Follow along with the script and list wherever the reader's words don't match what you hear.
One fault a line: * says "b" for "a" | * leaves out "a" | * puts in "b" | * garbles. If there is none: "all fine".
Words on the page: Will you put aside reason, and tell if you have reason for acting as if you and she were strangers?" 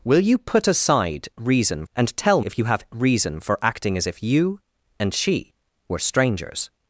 all fine